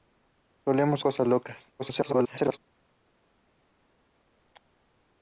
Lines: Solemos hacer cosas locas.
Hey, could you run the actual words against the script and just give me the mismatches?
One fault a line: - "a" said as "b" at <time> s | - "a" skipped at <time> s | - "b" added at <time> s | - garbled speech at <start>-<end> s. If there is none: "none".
- "hacer" skipped at 1.1 s
- garbled speech at 1.8-2.6 s